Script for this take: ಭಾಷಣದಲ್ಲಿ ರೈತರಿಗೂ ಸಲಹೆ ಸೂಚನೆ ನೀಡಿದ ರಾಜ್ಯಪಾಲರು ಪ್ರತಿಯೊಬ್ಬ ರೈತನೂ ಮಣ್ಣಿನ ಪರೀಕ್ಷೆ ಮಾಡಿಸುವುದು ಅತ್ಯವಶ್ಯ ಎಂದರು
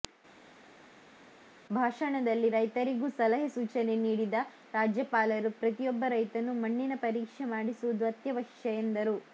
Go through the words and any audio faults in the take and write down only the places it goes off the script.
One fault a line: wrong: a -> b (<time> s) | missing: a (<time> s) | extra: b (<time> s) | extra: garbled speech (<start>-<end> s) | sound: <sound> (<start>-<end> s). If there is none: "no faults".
no faults